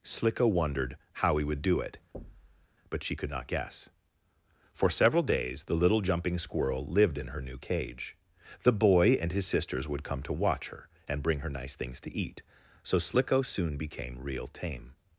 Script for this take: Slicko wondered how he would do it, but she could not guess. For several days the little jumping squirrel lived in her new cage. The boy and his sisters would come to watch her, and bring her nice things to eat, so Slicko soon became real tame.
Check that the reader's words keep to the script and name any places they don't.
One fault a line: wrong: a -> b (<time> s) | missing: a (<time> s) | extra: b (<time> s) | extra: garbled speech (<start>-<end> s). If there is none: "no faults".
no faults